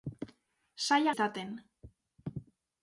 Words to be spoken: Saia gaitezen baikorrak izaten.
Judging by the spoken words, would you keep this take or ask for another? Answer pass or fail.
fail